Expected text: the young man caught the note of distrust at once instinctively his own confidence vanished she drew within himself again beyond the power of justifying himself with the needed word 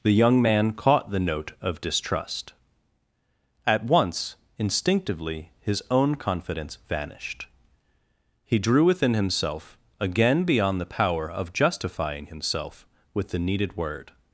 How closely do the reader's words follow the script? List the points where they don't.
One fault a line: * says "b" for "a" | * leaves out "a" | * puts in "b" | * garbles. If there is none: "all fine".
* says "he" for "she"